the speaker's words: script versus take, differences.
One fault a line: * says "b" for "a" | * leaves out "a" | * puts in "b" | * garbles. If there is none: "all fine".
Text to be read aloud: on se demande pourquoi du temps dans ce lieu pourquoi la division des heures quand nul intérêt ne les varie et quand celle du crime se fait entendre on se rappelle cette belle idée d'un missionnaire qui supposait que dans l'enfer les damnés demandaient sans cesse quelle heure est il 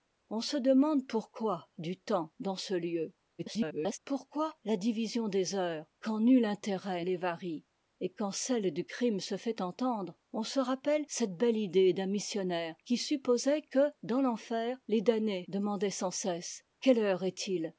* garbles
* leaves out "ne"